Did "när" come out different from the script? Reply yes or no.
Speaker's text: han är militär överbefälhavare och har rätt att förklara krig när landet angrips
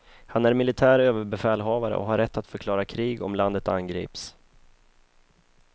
yes